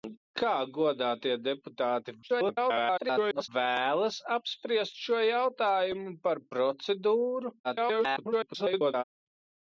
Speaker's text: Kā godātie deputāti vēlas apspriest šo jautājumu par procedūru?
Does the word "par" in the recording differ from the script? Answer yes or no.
no